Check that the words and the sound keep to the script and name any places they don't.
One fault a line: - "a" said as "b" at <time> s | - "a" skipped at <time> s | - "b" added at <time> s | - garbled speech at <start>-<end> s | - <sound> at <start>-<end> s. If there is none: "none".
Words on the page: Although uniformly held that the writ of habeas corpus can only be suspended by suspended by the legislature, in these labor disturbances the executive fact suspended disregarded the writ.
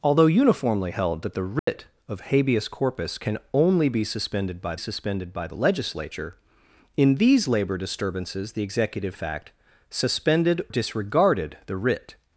- dropout at 1.6-1.7 s